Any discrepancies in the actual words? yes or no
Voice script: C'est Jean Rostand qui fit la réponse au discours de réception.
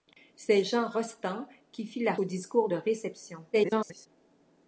yes